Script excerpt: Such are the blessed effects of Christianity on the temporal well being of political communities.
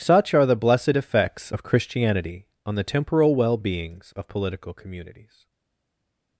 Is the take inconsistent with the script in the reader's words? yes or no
yes